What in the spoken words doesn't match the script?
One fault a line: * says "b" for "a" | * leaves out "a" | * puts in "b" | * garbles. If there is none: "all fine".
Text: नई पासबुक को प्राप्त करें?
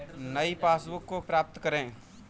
all fine